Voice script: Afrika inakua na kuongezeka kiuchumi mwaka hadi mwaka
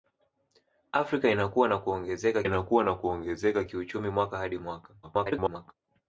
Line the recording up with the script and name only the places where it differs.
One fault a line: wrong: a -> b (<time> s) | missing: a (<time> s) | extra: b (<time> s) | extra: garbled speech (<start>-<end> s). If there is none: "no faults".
extra: inakua na kuongezeka (2.4 s)
extra: garbled speech (5.0-5.7 s)